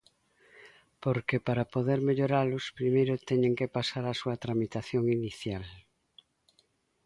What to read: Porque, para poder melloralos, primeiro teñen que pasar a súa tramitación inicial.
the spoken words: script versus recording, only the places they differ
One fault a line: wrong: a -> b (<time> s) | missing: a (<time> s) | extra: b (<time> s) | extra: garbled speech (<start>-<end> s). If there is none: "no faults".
no faults